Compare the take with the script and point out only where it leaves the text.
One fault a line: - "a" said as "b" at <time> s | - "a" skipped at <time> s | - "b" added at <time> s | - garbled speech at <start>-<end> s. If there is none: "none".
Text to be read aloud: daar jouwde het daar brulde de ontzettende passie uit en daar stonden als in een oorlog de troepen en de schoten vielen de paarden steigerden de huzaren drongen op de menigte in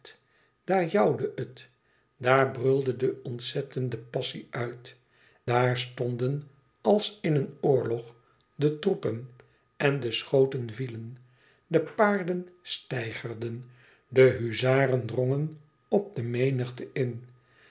- "en" skipped at 5.0 s